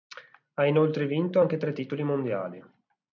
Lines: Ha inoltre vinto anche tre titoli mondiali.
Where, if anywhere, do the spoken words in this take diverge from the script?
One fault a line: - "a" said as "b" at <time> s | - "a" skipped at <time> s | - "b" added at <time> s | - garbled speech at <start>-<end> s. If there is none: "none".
none